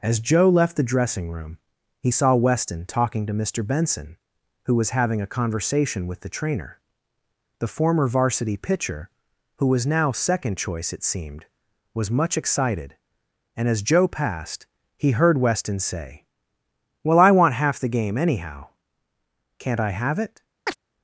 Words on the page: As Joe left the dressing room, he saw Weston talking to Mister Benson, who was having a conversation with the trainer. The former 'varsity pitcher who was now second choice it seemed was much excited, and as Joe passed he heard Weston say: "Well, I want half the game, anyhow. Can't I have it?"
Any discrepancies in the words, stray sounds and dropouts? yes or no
yes